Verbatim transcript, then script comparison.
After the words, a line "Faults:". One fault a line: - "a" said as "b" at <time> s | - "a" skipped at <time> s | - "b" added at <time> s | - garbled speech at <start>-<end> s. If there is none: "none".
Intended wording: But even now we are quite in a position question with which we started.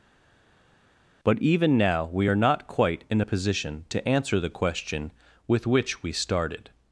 But even now we are not quite in a position to answer the question with which we started.
Faults:
- "not" added at 2.3 s
- "to answer the" added at 3.9 s